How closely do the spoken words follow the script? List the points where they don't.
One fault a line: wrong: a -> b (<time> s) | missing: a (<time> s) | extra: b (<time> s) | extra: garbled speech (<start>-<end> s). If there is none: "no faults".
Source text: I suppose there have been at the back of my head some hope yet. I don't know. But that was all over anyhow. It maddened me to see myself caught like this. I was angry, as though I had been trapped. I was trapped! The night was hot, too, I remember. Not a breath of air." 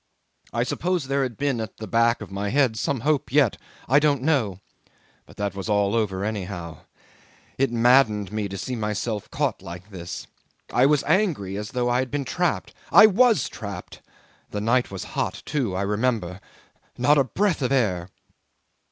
wrong: have -> had (1.2 s)